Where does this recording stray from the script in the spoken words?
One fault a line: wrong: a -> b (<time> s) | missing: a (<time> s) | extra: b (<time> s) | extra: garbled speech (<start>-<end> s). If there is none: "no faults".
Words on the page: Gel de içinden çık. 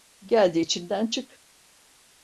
no faults